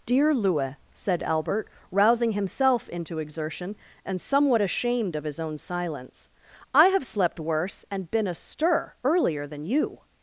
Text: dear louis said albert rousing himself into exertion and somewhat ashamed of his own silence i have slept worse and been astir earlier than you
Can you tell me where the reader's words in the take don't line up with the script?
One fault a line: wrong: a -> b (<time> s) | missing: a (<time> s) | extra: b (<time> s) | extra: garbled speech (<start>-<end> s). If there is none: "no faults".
no faults